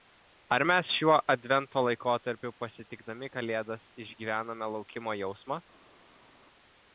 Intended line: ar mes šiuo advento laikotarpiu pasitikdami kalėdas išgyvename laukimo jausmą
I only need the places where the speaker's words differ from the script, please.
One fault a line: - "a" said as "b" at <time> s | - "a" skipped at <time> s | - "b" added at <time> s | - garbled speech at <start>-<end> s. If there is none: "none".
none